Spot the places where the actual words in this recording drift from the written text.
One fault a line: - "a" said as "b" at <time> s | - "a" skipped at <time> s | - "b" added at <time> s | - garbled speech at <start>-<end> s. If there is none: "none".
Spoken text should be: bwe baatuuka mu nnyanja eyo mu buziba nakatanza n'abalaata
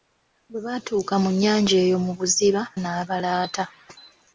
- "nakatanza" skipped at 2.6 s